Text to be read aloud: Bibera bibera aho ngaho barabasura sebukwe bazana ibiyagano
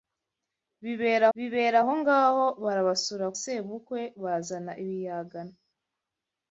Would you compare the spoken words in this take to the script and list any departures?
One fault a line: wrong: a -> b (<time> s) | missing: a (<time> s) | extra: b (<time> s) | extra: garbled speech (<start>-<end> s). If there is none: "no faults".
no faults